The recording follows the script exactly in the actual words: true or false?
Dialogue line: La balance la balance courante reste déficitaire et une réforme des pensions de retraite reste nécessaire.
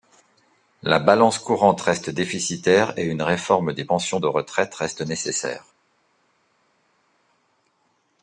false